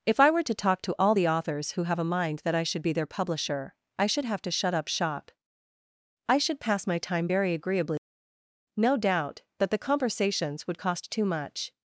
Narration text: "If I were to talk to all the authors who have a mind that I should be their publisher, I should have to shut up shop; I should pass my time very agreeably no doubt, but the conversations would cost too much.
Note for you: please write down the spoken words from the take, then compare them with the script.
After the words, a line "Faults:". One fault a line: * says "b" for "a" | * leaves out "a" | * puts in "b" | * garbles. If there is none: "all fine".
"If I were to talk to all the authors who have a mind that I should be their publisher, I should have to shut up shop; I should pass my time very agreeably no doubt, that the conversations would cost too much.
Faults:
* says "that" for "but"